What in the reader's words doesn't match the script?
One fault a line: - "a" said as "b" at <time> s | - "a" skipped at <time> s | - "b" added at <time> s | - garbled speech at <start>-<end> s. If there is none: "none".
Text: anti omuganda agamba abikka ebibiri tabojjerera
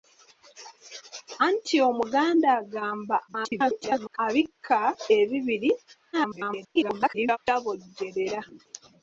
- garbled speech at 3.3-4.2 s
- garbled speech at 6.1-7.4 s